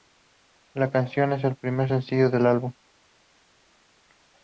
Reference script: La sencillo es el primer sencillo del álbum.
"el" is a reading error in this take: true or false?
false